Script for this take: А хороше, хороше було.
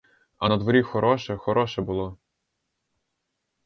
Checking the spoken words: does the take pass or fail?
fail